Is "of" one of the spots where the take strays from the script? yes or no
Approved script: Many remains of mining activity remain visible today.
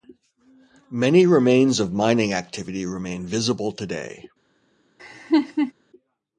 no